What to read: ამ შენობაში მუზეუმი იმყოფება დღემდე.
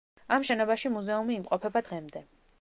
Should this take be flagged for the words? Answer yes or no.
no